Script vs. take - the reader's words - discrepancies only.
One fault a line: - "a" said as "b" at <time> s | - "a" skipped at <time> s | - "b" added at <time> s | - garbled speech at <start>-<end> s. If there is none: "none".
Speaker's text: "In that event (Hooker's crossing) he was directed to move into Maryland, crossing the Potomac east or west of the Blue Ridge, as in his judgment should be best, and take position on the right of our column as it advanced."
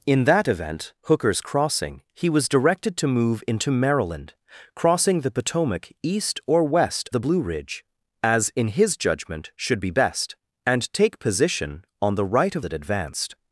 - "of" skipped at 7.1 s
- "our column as" skipped at 12.7 s